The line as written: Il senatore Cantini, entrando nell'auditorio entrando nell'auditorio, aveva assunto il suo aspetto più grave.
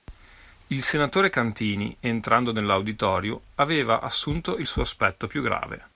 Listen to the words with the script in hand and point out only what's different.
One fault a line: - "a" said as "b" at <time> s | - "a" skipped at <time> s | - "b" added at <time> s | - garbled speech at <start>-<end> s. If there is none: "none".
- "entrando nell'auditorio" skipped at 3.4 s